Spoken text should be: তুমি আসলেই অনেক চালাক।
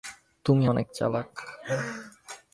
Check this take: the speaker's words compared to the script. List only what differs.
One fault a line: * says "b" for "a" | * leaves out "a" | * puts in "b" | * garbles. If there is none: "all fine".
* leaves out "আসলেই"